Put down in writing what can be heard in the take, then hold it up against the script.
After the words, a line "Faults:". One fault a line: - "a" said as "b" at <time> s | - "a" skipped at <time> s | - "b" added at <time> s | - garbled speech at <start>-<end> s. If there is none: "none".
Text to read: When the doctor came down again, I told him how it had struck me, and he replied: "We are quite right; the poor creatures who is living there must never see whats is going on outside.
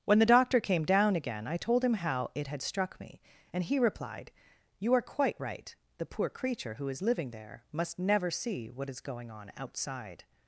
When the doctor came down again, I told him how it had struck me, and he replied: "You are quite right; the poor creature who is living there must never see what is going on outside.
Faults:
- "We" said as "You" at 4.8 s
- "creatures" said as "creature" at 6.3 s
- "whats" said as "what" at 8.7 s